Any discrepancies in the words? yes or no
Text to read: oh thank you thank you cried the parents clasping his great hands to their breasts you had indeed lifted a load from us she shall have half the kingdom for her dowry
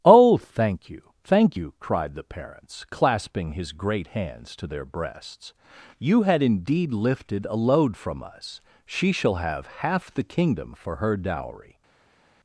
no